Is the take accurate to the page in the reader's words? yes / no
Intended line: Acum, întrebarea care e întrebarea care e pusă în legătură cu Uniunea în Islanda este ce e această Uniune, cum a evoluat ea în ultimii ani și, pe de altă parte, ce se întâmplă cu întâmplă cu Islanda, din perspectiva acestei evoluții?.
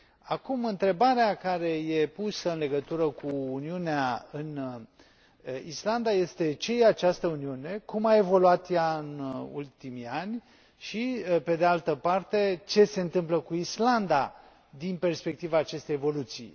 no